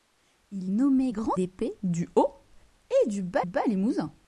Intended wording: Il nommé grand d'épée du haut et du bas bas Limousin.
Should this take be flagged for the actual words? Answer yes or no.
no